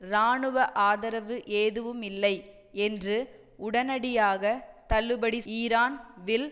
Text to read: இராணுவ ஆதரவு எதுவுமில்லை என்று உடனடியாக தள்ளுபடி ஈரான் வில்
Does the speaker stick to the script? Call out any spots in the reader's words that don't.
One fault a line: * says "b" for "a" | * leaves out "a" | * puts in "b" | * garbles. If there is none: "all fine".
all fine